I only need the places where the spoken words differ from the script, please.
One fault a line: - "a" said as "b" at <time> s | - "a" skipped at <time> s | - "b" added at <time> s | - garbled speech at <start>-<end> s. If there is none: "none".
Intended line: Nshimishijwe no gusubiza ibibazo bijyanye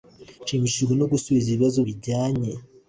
none